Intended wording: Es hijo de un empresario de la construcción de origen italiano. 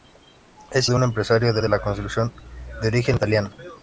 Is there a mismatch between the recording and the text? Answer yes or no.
yes